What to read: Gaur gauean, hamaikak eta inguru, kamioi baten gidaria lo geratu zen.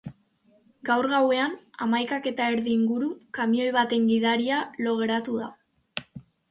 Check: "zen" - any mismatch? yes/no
yes